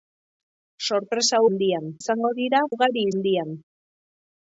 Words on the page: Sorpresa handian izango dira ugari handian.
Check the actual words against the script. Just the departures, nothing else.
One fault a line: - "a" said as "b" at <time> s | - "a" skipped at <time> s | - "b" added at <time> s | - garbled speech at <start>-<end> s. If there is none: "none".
none